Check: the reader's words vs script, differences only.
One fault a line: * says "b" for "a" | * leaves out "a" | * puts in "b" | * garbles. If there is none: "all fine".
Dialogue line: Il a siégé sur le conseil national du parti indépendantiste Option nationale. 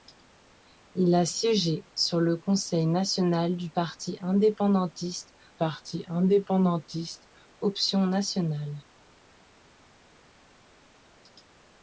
* puts in "parti indépendantiste"